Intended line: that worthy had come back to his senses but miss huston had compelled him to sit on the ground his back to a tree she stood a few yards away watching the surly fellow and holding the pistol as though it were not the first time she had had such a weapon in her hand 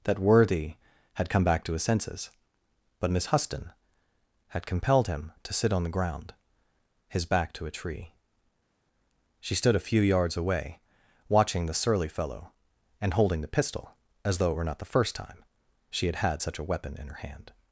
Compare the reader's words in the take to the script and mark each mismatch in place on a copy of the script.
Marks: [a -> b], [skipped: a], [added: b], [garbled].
that worthy had come back to his senses but miss huston had compelled him to sit on the ground his back to a tree she stood a few yards away watching the surly fellow and holding the pistol as though it were not the first time she had had such a weapon in her hand